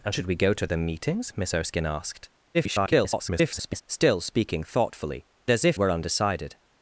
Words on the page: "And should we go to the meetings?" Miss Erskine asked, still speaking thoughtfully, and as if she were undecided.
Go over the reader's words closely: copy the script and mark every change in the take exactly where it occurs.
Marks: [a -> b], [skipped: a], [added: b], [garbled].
"And should we go to the meetings?" Miss Erskine asked, [garbled] still speaking thoughtfully, [skipped: and] as if [skipped: she] were undecided.